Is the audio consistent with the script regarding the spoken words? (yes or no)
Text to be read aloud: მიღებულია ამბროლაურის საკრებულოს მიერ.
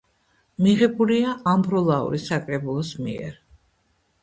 yes